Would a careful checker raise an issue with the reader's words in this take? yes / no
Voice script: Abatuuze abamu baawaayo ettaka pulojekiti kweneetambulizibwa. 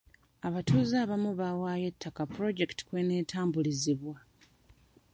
no